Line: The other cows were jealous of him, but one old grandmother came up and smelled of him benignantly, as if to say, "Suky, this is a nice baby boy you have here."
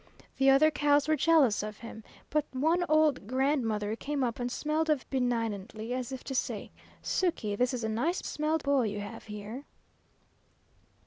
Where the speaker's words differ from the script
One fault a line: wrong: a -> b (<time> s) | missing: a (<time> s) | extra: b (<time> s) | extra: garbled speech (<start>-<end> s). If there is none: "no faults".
missing: him (5.0 s)
wrong: baby -> smelled (8.2 s)